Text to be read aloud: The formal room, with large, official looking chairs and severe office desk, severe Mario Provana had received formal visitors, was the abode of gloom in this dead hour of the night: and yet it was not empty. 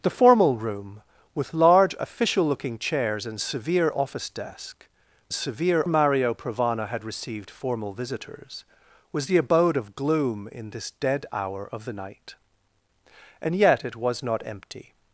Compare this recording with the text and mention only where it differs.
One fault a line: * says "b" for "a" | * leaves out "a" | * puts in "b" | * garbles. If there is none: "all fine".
all fine